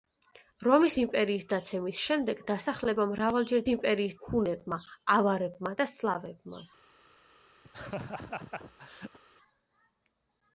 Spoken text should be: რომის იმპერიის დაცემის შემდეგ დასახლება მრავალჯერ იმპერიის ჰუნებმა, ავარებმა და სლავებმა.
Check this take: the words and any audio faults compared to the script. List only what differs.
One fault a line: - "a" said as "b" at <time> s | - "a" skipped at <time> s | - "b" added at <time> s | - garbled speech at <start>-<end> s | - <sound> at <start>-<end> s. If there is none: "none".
- laugh at 7.6-9.2 s